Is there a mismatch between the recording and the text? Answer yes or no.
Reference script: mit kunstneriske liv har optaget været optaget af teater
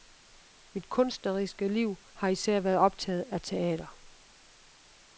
yes